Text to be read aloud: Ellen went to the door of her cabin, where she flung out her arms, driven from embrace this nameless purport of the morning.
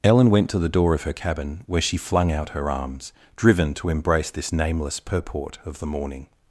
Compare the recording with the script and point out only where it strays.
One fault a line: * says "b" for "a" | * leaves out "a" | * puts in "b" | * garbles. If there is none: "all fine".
* says "to" for "from"